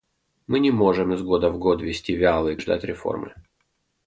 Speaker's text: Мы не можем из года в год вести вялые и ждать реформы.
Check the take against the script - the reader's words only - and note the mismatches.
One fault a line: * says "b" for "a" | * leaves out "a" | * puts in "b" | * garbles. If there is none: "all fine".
all fine